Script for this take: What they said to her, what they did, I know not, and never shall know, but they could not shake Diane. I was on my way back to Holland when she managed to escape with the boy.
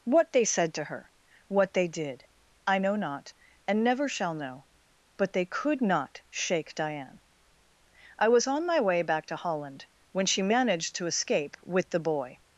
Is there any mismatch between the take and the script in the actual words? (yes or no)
no